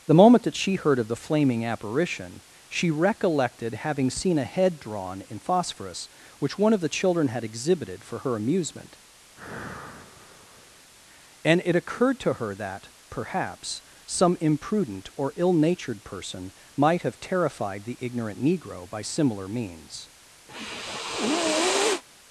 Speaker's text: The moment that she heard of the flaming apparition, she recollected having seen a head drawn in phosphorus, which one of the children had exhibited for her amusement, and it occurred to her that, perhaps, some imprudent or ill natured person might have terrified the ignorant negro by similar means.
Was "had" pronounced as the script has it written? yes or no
yes